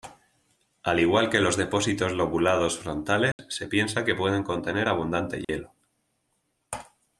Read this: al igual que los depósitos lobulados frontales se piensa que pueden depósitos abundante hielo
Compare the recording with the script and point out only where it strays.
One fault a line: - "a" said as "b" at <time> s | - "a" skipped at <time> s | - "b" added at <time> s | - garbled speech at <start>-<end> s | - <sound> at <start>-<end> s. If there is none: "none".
- dropout at 3.3-3.4 s
- "depósitos" said as "contener" at 4.4 s
- dropout at 5.4-5.5 s